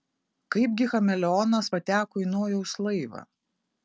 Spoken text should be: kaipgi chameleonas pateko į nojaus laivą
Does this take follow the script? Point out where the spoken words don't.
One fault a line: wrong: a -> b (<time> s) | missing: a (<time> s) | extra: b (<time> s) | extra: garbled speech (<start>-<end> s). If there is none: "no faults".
no faults